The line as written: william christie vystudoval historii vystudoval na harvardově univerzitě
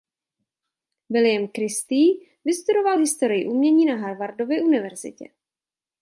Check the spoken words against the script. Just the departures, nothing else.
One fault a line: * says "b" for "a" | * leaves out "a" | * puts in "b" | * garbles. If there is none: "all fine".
* says "umění" for "vystudoval"